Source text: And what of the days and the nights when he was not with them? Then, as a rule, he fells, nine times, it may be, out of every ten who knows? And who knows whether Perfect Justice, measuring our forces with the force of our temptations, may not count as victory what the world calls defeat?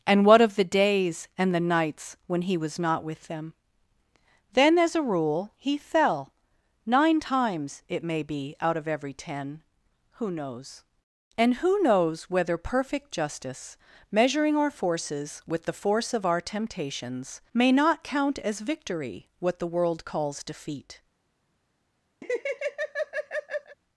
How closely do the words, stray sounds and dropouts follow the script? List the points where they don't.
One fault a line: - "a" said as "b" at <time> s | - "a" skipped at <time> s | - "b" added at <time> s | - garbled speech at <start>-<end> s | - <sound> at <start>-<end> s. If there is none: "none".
- "fells" said as "fell" at 5.8 s
- laugh at 22.2-23.8 s